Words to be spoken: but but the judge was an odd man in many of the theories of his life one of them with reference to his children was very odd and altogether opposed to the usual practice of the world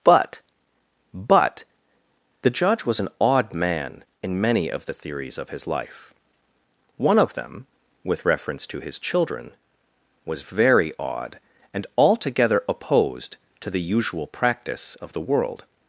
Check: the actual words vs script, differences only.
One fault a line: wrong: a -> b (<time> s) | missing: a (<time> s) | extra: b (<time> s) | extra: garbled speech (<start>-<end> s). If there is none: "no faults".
no faults